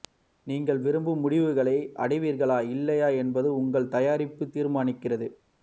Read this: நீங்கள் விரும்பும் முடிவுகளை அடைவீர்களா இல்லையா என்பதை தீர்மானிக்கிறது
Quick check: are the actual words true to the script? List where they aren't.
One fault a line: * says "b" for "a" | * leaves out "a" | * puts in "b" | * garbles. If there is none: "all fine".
* puts in "உங்கள் தயாரிப்பு"